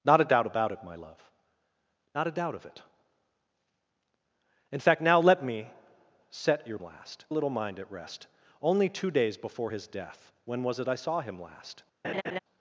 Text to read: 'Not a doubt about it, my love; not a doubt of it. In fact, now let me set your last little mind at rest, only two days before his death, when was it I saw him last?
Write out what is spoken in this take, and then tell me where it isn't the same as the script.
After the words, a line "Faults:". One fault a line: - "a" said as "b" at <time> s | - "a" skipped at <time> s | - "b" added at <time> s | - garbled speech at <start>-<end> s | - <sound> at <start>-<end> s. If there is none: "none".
'Not a doubt about it, my love; not a doubt of it. In fact, now let me set your last little mind at rest, only two days before his death, when was it I saw him last?
Faults:
- laugh at 12.0-12.4 s